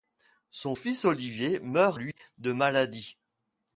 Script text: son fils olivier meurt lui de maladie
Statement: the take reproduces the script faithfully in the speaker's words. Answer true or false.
true